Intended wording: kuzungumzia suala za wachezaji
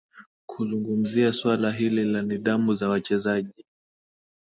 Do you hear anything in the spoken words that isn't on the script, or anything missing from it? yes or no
yes